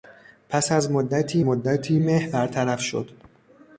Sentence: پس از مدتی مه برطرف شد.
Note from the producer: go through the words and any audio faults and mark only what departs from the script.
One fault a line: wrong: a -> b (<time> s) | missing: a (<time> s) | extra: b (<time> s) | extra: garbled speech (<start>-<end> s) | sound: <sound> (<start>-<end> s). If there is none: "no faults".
extra: مدتی (1.4 s)